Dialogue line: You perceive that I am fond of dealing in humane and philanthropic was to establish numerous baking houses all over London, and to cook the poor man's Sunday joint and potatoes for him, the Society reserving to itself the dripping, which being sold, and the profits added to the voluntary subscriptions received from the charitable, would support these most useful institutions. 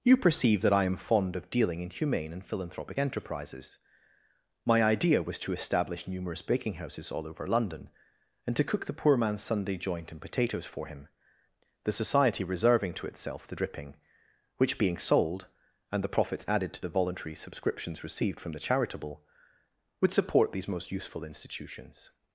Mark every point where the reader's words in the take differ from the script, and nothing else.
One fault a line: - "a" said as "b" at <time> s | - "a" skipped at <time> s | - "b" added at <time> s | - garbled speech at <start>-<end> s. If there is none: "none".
- "enterprises My idea" added at 3.0 s